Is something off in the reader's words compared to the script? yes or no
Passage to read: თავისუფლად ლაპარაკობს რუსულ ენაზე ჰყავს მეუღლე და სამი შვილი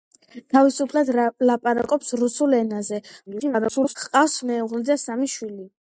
yes